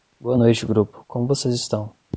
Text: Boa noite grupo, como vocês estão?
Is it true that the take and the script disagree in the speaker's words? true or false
false